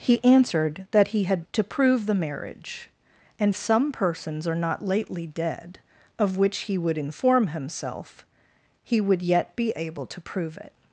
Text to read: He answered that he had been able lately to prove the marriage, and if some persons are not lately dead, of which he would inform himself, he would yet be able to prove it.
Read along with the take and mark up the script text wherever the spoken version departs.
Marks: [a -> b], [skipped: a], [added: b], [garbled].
He answered that he had [skipped: been able lately] to prove the marriage, and [skipped: if] some persons are not lately dead, of which he would inform himself, he would yet be able to prove it.